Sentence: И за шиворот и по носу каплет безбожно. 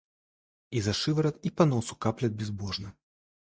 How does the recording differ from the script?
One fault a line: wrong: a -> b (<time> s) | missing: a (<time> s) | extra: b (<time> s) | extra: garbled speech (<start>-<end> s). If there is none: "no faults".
no faults